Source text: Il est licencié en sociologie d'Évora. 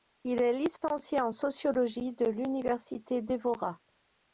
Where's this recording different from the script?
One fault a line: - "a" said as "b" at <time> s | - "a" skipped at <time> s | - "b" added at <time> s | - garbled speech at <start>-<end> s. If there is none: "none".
- "de l'université" added at 2.1 s